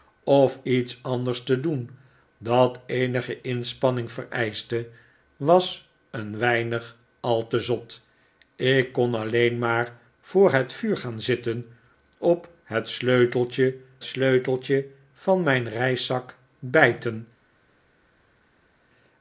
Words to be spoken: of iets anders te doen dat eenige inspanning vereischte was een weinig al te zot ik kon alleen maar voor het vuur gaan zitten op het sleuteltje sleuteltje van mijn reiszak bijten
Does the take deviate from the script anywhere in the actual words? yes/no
no